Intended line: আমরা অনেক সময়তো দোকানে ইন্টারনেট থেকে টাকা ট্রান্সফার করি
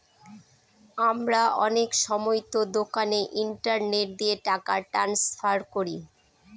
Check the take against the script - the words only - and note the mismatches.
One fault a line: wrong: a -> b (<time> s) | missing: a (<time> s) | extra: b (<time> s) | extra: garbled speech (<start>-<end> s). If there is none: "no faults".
wrong: থেকে -> দিয়ে (4.2 s)